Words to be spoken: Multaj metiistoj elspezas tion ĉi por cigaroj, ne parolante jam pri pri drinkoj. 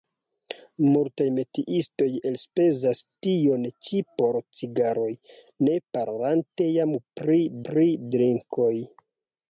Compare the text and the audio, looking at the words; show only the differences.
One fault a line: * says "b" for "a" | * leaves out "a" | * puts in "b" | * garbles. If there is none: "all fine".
all fine